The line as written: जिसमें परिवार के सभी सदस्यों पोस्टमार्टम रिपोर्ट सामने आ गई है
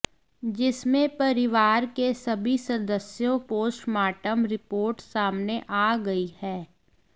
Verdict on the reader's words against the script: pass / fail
pass